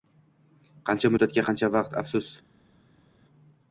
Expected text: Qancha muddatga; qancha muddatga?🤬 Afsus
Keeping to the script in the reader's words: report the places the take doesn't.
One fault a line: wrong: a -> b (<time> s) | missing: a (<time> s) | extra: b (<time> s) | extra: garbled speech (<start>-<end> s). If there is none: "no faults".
wrong: muddatga -> vaqt (1.8 s)